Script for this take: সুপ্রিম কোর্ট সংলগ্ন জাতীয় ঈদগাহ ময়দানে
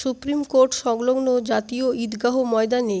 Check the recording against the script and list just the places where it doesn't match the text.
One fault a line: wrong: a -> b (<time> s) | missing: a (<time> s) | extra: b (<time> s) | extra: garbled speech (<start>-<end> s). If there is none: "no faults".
no faults